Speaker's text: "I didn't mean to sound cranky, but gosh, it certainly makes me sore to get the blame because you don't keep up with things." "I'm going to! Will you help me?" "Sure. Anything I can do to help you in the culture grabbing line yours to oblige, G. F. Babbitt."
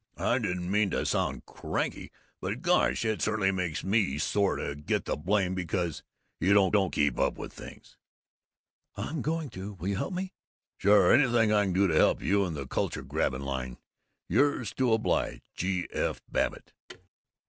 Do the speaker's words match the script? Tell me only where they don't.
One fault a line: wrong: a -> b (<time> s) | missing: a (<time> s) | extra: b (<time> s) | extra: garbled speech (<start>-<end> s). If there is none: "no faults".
extra: don't (6.7 s)